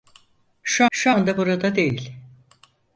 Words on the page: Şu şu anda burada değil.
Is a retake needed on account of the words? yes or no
no